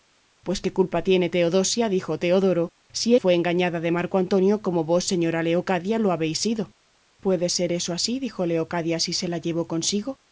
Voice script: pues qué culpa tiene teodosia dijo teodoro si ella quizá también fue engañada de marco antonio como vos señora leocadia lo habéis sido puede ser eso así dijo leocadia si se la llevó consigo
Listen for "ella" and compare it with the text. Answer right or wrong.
wrong